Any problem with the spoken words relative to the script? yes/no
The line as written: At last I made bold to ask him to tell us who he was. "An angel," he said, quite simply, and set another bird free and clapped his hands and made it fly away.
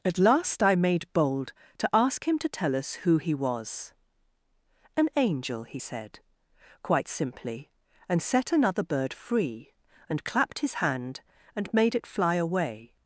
yes